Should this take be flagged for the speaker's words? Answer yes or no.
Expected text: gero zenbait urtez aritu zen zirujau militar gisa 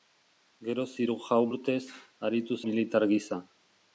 yes